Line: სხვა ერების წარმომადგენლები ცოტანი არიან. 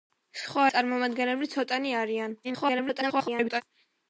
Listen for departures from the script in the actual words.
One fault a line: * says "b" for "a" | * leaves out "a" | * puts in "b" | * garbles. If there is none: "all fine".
* leaves out "ერების"
* garbles